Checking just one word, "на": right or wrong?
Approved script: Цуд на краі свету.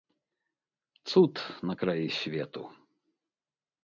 right